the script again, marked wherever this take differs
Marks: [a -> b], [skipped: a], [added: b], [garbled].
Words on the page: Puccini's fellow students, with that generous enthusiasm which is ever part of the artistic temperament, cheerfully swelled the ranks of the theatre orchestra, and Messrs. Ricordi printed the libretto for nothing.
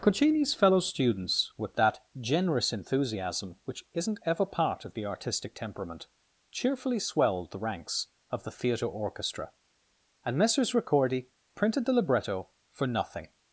Puccini's fellow students, with that generous enthusiasm which [is -> isn't] ever part of the artistic temperament, cheerfully swelled the ranks of the theatre orchestra, and Messrs. Ricordi printed the libretto for nothing.